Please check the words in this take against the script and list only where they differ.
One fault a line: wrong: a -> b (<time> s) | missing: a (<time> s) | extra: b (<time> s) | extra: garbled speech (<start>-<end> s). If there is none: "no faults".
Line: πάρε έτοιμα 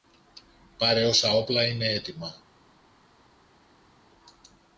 extra: όσα όπλα είναι (1.1 s)